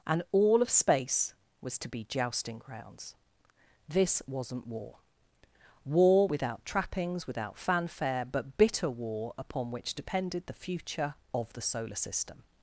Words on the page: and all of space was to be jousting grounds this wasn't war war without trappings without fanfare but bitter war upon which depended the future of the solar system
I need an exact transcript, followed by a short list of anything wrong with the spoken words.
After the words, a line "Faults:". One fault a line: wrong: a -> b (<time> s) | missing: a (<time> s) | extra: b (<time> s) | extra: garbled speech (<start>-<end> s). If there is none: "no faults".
and all of space was to be jousting grounds this wasn't war war without trappings without fanfare but bitter war upon which depended the future of the solar system
Faults:
no faults